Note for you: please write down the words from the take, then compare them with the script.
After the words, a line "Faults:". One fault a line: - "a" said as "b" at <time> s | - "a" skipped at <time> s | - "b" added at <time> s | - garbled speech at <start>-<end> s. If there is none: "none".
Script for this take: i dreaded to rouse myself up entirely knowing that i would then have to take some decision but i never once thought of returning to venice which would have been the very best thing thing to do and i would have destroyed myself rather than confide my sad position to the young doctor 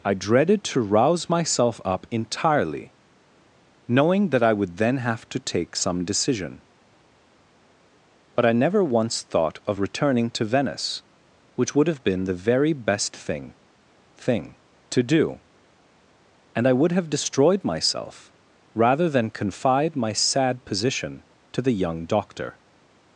i dreaded to rouse myself up entirely knowing that i would then have to take some decision but i never once thought of returning to venice which would have been the very best thing thing to do and i would have destroyed myself rather than confide my sad position to the young doctor
Faults:
none